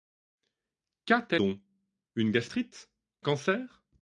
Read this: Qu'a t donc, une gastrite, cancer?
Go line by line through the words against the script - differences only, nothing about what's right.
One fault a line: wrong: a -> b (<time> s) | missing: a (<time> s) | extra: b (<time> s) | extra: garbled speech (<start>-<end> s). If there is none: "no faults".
no faults